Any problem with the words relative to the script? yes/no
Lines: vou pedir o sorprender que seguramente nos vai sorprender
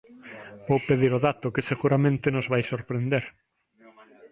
yes